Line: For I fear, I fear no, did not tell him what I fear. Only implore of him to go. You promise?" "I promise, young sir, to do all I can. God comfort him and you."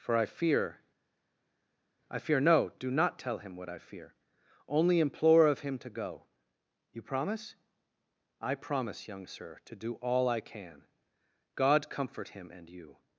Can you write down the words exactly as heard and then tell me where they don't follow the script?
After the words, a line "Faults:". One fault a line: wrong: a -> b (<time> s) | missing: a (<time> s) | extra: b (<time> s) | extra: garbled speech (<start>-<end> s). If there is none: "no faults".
For I fear, I fear no, do not tell him what I fear. Only implore of him to go. You promise?" "I promise, young sir, to do all I can. God comfort him and you."
Faults:
wrong: did -> do (2.8 s)